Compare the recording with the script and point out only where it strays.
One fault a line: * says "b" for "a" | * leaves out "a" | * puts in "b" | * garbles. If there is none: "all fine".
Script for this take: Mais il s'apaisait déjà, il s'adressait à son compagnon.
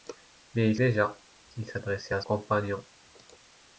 * leaves out "s'apaisait"
* leaves out "son"